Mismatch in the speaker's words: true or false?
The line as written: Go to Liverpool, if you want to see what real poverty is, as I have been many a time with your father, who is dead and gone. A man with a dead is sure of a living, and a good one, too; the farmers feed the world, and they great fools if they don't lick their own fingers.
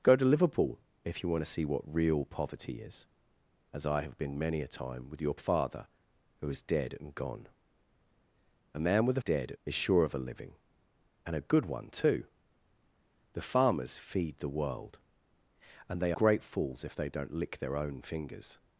false